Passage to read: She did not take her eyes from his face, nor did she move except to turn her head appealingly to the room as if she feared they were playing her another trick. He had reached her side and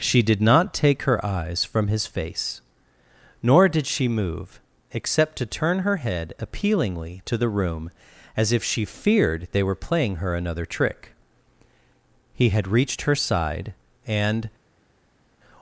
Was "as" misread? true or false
false